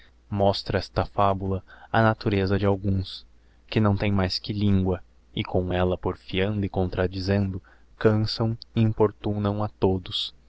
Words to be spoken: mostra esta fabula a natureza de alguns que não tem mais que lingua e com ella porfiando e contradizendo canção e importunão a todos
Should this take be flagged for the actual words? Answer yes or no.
no